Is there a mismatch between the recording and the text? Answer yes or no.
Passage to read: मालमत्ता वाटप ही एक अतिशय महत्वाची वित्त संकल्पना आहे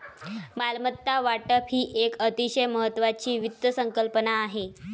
no